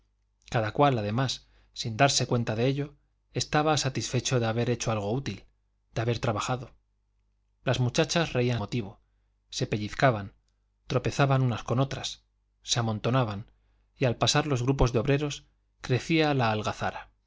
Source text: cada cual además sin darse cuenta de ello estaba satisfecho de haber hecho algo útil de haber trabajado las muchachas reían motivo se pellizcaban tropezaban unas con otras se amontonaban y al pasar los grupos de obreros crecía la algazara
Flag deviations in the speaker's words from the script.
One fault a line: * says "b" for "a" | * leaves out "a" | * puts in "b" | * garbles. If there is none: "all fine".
all fine